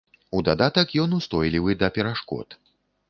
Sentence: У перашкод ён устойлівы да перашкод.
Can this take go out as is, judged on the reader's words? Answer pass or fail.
fail